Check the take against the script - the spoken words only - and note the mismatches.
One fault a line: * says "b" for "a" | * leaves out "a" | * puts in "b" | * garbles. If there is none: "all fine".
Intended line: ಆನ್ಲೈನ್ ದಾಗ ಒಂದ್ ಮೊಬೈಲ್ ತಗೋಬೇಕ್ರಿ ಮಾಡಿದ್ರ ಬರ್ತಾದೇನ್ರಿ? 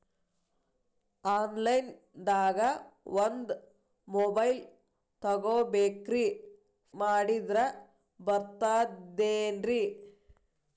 all fine